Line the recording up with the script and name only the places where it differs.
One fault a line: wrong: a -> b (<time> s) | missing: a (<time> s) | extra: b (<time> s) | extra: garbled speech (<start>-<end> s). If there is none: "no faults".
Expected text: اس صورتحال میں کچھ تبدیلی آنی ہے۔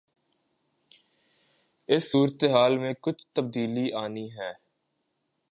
no faults